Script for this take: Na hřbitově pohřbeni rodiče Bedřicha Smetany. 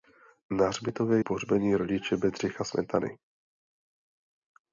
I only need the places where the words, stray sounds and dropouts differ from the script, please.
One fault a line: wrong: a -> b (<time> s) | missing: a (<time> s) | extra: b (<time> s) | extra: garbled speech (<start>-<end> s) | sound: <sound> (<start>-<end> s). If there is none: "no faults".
no faults